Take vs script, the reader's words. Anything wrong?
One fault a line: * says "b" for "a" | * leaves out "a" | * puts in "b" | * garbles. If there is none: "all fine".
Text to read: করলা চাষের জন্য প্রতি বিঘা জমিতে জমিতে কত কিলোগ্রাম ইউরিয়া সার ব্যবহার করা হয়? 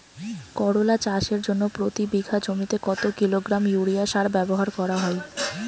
* leaves out "জমিতে"